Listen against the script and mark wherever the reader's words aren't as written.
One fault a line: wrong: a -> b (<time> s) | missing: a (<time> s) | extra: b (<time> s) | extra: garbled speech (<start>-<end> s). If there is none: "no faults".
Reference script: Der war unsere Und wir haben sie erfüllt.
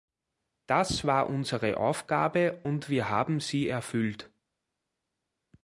wrong: Der -> Das (0.7 s)
extra: Aufgabe (1.8 s)